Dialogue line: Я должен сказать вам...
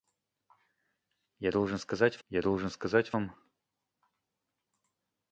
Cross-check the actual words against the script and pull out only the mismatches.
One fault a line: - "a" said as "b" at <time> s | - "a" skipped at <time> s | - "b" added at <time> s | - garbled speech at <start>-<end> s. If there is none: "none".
- "я должен сказать" added at 2.3 s